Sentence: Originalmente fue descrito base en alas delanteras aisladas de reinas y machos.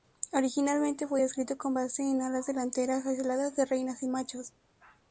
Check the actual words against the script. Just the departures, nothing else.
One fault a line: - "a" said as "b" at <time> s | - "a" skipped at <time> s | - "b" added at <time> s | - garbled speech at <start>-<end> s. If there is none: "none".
- "con" added at 1.6 s